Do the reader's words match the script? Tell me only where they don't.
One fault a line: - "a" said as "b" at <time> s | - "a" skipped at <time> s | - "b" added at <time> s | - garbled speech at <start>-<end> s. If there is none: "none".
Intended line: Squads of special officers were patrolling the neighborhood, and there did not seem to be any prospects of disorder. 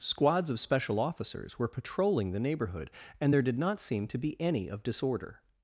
- "prospects" skipped at 4.7 s